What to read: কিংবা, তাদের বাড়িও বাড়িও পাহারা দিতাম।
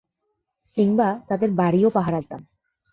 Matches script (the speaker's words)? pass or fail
fail